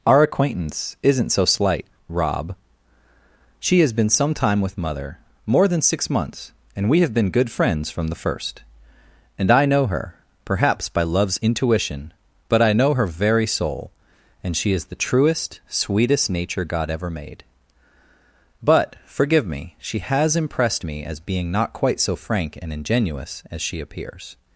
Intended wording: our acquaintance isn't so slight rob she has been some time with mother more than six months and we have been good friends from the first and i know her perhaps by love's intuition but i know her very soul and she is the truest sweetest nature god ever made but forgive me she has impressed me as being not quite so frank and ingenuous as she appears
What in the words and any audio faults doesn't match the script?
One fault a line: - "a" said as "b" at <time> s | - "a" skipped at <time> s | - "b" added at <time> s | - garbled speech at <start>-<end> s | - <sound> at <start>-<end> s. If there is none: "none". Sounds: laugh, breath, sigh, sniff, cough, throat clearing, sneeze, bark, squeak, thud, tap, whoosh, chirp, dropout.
none